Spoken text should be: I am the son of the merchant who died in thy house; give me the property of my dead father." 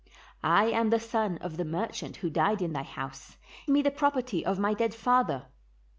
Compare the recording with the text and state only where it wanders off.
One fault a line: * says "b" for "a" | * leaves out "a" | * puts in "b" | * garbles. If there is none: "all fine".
* leaves out "give"